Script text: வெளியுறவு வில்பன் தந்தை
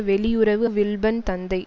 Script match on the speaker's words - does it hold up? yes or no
yes